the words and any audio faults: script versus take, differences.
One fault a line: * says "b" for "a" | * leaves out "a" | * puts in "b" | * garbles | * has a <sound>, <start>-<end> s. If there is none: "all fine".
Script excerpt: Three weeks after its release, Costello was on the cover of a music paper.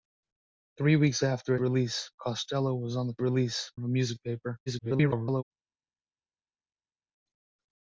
* leaves out "its"
* says "release" for "cover"
* garbles